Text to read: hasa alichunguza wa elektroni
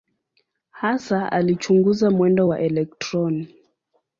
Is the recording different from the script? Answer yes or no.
yes